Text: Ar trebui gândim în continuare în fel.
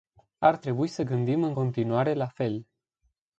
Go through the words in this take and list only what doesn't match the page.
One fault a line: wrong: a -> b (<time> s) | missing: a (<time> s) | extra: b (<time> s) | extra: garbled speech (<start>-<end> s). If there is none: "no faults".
extra: să (0.9 s)
wrong: în -> la (2.1 s)